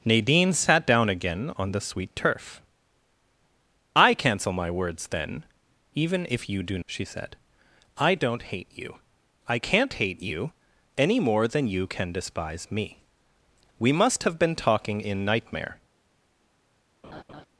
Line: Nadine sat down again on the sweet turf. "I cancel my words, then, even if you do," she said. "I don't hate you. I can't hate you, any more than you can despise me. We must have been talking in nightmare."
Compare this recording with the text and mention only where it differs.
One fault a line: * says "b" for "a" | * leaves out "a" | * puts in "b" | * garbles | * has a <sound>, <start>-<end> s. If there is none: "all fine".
* has a laugh, 17.0-17.5 s